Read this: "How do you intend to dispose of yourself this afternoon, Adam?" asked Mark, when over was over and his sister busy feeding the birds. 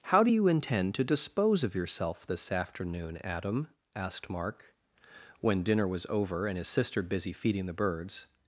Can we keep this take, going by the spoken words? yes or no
no